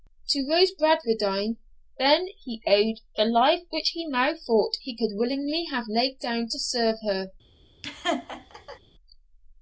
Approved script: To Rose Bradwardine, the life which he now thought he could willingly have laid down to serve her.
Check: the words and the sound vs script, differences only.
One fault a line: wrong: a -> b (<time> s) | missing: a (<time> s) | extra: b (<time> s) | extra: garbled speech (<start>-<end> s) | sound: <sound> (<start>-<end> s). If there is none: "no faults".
extra: then he owed (2.0 s)
sound: laugh (7.8-8.8 s)